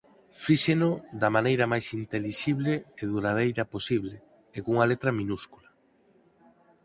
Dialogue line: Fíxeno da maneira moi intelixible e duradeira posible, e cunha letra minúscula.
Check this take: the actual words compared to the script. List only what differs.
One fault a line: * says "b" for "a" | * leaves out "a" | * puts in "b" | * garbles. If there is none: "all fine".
* says "máis" for "moi"